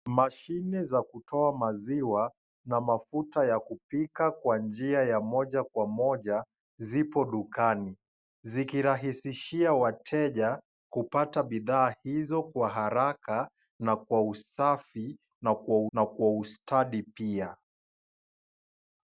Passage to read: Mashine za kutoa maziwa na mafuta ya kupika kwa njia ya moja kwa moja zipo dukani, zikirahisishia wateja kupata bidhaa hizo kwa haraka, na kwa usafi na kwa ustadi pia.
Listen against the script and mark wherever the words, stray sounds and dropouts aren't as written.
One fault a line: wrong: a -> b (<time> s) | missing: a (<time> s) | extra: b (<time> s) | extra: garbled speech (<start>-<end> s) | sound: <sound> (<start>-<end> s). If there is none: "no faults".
extra: na kwa (15.9 s)